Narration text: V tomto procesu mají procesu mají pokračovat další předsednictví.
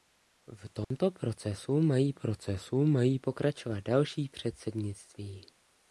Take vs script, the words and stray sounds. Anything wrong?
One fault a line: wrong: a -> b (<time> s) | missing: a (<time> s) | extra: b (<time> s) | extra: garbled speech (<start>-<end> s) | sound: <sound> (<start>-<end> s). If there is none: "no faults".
sound: dropout (0.8-0.9 s)